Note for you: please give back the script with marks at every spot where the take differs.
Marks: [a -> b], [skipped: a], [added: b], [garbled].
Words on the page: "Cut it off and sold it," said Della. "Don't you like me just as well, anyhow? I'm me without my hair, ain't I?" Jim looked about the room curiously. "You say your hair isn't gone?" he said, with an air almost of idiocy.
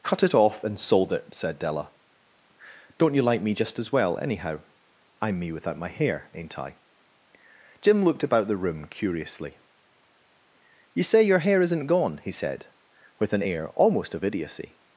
"Cut it off and sold it," said Della. "Don't you like me just as well, anyhow? I'm me without my hair, ain't I?" Jim looked about the room curiously. "You say your hair isn't gone?" he said, with an air almost of idiocy.